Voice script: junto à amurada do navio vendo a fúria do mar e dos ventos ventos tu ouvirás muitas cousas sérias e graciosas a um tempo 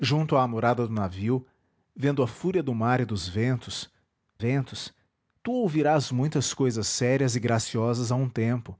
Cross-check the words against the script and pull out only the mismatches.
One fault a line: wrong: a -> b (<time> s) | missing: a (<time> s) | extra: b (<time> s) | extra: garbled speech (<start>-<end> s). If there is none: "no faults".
no faults